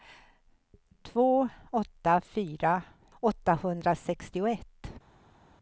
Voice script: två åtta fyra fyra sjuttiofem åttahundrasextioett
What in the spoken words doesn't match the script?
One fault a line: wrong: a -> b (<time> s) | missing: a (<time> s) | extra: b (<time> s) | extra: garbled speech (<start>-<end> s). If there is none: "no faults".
missing: fyra sjuttiofem (2.8 s)